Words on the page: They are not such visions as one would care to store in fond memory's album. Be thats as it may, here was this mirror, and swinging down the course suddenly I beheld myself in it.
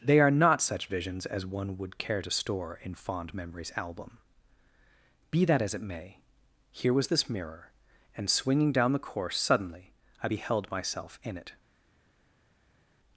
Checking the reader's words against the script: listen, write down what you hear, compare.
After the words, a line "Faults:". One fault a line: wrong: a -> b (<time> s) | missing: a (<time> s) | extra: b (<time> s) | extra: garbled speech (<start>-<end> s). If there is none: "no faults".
They are not such visions as one would care to store in fond memory's album. Be that as it may, here was this mirror, and swinging down the course suddenly I beheld myself in it.
Faults:
wrong: thats -> that (5.5 s)